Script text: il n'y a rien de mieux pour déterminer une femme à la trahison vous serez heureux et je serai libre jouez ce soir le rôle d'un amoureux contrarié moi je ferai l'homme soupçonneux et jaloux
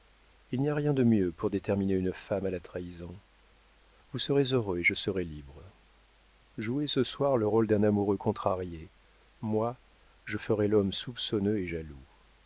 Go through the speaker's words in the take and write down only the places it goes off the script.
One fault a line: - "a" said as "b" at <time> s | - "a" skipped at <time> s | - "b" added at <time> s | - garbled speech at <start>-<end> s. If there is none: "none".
none